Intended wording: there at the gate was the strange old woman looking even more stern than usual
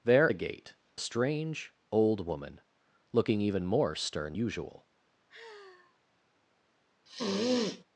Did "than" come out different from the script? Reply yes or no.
yes